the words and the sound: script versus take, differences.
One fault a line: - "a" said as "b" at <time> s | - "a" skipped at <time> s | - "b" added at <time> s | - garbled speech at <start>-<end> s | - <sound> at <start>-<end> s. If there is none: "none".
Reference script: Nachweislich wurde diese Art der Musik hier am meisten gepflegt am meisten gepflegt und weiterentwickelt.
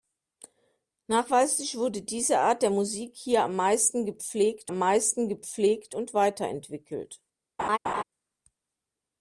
- laugh at 7.6-8.0 s